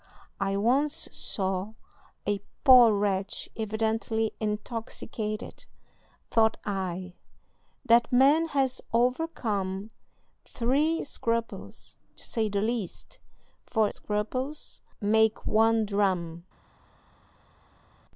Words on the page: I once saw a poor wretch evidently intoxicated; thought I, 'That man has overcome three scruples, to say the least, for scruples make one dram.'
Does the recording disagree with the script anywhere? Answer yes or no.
no